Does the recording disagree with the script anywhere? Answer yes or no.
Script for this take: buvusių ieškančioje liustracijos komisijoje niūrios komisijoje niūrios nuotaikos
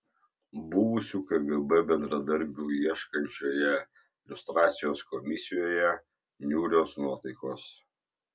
yes